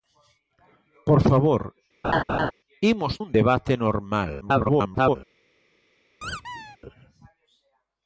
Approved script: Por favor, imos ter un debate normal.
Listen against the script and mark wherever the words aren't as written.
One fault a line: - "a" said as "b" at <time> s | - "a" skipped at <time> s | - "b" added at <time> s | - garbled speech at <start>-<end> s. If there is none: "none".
- "ter" skipped at 3.1 s
- garbled speech at 4.4-5.2 s